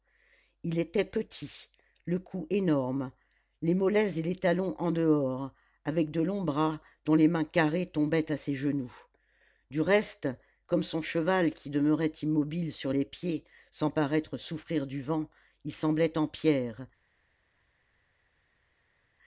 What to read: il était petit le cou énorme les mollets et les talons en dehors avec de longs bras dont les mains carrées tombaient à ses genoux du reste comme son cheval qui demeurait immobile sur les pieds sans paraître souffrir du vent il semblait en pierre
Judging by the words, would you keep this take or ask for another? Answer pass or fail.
pass